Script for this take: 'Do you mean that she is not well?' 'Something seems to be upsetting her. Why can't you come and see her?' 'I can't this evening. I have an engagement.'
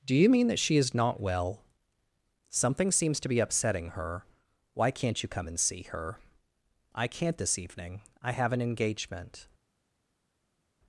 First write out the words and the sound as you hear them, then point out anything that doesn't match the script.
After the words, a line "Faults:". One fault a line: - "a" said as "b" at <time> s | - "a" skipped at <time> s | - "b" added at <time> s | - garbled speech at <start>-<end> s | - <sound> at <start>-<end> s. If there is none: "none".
'Do you mean that she is not well?' 'Something seems to be upsetting her. Why can't you come and see her?' 'I can't this evening. I have an engagement.'
Faults:
none